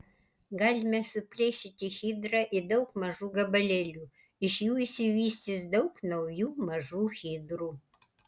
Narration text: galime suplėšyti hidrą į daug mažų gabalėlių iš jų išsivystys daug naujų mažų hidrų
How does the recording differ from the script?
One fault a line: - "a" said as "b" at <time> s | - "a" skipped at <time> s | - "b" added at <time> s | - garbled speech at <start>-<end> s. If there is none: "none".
none